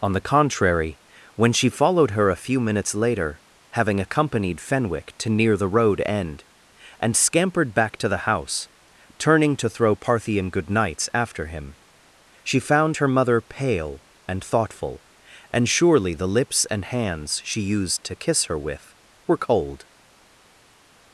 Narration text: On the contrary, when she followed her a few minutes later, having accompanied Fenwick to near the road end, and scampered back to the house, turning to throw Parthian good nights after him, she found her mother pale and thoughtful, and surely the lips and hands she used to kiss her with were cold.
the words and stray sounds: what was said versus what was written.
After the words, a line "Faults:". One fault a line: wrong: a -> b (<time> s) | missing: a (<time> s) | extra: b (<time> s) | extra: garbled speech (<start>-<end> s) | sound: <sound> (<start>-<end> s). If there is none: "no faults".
On the contrary, when she followed her a few minutes later, having accompanied Fenwick to near the road end, and scampered back to the house, turning to throw Parthian good nights after him, she found her mother pale and thoughtful, and surely the lips and hands she used to kiss her with were cold.
Faults:
no faults